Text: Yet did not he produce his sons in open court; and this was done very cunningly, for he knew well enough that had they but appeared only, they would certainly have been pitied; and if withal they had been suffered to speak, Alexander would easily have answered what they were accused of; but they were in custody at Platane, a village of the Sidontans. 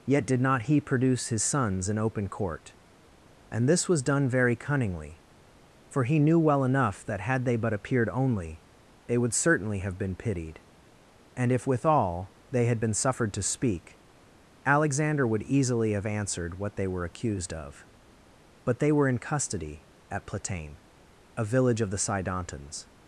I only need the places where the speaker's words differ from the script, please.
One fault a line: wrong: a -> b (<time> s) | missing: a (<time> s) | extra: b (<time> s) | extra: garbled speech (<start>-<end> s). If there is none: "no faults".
no faults